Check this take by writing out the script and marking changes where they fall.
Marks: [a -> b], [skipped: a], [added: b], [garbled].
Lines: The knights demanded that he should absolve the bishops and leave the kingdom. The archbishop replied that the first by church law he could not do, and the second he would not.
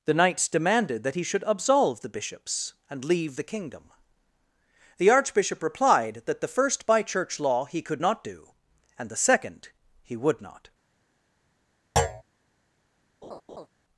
The knights demanded that he should absolve the bishops and leave the kingdom. The archbishop replied that the first by church law he could not do, and the second he would not.